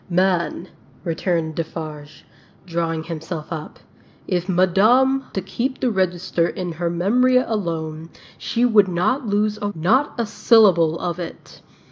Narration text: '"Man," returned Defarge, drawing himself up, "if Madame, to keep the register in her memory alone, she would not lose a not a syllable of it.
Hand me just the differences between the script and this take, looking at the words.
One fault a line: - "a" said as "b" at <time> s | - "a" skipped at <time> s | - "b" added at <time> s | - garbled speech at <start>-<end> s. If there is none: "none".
none